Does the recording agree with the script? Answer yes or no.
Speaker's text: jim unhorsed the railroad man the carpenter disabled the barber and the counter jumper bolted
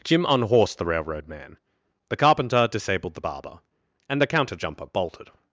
yes